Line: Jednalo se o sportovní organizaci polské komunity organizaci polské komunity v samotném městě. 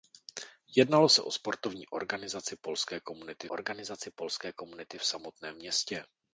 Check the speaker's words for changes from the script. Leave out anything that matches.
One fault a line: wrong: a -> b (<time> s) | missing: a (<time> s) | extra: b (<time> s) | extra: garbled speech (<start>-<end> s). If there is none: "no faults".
no faults